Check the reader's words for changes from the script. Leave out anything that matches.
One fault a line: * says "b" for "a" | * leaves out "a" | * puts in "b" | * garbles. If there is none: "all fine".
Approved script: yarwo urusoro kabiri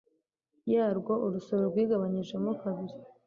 * puts in "rwigabanyijemo"